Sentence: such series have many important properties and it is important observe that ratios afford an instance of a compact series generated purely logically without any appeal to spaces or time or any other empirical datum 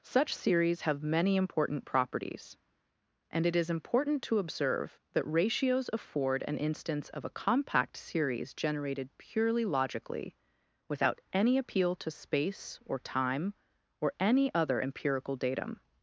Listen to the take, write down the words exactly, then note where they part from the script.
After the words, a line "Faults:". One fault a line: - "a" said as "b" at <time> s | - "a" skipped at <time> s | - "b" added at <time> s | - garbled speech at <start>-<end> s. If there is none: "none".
such series have many important properties and it is important to observe that ratios afford an instance of a compact series generated purely logically without any appeal to space or time or any other empirical datum
Faults:
- "to" added at 4.2 s
- "spaces" said as "space" at 12.1 s